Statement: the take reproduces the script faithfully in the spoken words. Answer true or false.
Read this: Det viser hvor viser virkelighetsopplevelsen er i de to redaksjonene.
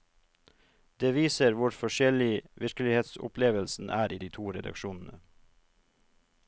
false